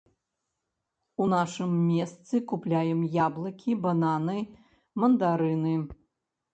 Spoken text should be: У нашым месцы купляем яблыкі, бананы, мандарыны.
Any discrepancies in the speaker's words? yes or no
no